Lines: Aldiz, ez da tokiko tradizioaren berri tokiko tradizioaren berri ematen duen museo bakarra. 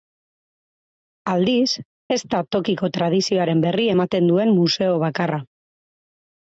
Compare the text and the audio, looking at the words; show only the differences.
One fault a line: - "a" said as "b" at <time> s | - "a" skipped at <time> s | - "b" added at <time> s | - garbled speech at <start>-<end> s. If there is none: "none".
- "tokiko tradizioaren berri" skipped at 3.9 s